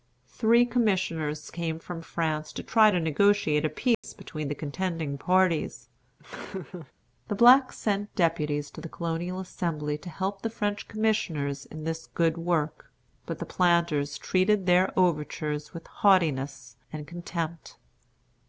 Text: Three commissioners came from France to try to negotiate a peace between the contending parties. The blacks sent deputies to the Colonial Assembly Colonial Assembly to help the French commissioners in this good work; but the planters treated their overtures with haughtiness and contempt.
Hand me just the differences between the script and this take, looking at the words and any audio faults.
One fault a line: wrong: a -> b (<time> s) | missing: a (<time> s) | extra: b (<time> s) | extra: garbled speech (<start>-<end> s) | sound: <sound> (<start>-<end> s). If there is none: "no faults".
sound: dropout (3.9-4.0 s)
sound: laugh (6.2-6.9 s)
missing: Colonial Assembly (10.0 s)